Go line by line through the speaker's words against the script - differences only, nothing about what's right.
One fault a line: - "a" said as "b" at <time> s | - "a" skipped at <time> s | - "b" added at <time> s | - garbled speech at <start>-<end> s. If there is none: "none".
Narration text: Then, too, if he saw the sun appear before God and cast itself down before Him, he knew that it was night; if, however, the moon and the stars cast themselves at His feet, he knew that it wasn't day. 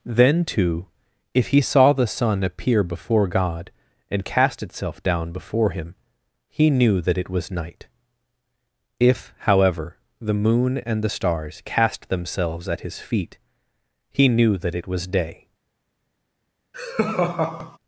- "wasn't" said as "was" at 14.9 s